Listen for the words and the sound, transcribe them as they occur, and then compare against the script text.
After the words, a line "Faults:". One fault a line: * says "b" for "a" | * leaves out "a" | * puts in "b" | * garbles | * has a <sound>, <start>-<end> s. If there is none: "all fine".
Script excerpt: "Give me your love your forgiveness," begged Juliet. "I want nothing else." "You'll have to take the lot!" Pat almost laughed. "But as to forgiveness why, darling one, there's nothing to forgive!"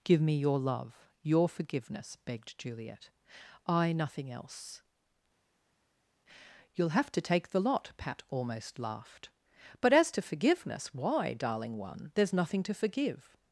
"Give me your love your forgiveness," begged Juliet. "I nothing else." "You'll have to take the lot!" Pat almost laughed. "But as to forgiveness why, darling one, there's nothing to forgive!"
Faults:
* leaves out "want"